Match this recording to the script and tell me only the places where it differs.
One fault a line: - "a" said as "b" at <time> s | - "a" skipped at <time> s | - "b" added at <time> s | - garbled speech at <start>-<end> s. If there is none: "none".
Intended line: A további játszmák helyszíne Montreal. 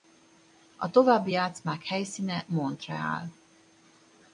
none